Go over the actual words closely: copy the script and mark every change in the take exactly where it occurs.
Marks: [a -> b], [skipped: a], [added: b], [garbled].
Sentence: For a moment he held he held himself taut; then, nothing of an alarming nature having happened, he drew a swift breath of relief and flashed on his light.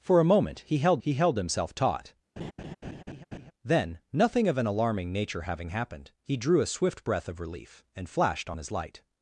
For a moment he held he held himself taut; then, nothing of an alarming nature having happened, he drew a swift breath of relief and flashed on his light.